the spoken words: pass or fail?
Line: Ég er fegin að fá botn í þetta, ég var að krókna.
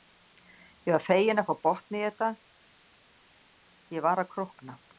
fail